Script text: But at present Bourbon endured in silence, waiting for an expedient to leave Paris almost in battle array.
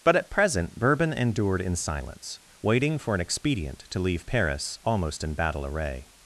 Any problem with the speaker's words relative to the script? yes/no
no